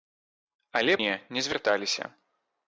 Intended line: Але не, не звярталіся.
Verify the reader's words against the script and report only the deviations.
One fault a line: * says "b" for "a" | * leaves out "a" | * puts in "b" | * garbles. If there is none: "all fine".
all fine